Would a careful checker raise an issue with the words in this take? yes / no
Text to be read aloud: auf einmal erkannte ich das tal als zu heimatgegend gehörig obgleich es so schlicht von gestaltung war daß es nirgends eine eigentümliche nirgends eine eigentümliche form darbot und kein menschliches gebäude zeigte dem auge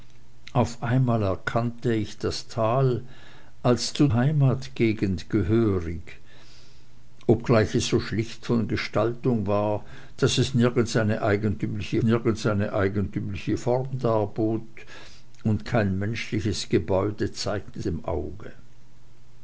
no